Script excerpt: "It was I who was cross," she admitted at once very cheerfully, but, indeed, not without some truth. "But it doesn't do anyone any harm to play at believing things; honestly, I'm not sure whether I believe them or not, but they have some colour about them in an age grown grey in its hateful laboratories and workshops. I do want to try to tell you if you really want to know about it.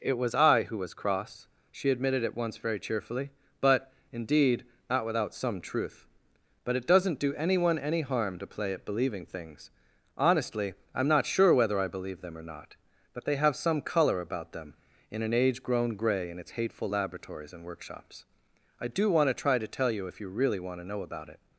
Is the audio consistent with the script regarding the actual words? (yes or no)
yes